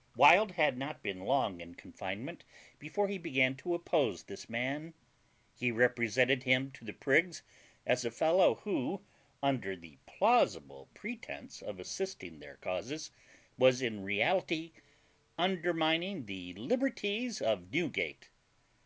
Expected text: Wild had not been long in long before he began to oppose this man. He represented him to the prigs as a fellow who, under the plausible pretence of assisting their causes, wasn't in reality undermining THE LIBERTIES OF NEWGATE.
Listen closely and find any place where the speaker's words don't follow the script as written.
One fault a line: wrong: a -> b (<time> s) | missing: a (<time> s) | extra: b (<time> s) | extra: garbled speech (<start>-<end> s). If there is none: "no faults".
wrong: long -> confinement (1.7 s)
wrong: wasn't -> was (13.6 s)